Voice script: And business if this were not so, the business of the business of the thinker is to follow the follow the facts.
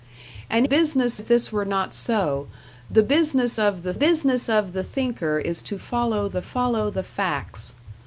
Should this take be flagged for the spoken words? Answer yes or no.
no